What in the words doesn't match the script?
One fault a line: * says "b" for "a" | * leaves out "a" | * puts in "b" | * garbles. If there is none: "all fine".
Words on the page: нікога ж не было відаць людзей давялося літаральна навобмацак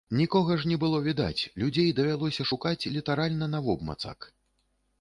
* puts in "шукаць"